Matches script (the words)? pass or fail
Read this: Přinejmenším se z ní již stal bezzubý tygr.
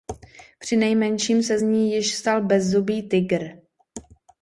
pass